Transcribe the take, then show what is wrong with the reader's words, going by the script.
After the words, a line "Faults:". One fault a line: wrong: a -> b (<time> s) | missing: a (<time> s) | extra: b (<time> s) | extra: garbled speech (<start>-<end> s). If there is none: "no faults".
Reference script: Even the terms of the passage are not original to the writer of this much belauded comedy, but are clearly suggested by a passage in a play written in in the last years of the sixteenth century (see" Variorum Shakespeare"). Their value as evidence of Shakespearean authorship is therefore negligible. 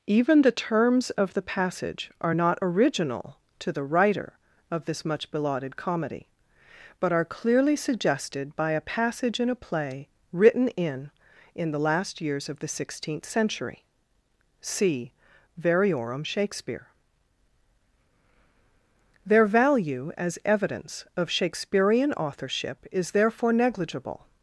Even the terms of the passage are not original to the writer of this much belauded comedy, but are clearly suggested by a passage in a play written in in the last years of the sixteenth century (see" Variorum Shakespeare"). Their value as evidence of Shakespearean authorship is therefore negligible.
Faults:
no faults